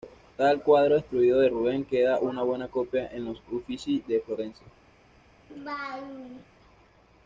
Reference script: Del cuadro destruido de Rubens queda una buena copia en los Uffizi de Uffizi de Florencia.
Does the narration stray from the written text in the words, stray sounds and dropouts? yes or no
yes